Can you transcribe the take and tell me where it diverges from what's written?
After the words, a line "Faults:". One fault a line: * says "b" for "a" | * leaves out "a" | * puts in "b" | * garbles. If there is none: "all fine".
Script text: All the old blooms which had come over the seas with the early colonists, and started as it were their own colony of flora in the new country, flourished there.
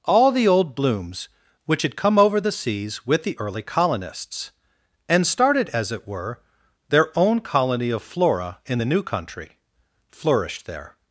All the old blooms which had come over the seas with the early colonists, and started as it were their own colony of flora in the new country, flourished there.
Faults:
all fine